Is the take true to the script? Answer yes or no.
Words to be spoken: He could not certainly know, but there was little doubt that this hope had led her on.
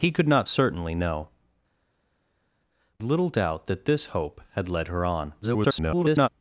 no